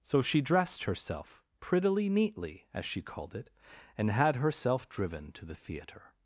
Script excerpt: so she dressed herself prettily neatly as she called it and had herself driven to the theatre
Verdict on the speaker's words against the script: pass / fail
pass